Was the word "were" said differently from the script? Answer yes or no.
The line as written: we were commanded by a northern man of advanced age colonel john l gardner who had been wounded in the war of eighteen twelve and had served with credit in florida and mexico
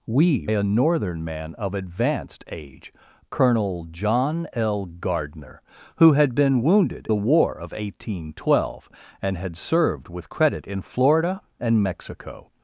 yes